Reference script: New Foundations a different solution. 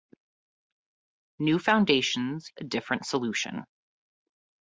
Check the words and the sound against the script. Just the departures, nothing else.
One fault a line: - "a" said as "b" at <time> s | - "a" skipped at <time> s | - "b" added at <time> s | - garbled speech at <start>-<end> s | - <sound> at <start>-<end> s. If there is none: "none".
none